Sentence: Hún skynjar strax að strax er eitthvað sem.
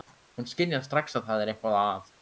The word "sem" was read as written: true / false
false